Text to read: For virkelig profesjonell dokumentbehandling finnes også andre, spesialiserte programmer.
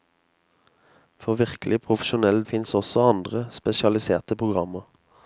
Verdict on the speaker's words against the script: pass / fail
fail